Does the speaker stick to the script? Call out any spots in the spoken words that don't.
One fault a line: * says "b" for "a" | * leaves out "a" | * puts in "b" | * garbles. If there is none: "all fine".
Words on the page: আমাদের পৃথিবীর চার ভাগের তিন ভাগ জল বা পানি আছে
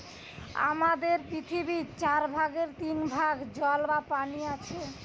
all fine